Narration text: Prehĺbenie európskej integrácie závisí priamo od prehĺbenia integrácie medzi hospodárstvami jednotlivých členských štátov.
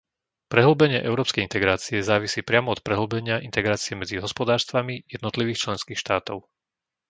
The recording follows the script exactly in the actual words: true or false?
true